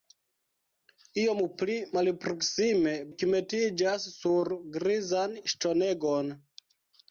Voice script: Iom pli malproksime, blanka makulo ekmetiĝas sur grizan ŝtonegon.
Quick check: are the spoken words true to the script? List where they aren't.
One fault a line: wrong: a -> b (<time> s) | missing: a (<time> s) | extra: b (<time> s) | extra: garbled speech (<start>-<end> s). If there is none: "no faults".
missing: blanka makulo (3.0 s)